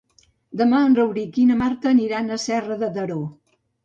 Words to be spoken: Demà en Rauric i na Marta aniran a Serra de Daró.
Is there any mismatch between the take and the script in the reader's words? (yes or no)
no